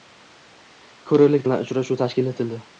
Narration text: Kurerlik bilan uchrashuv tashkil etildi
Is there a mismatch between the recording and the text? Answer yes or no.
no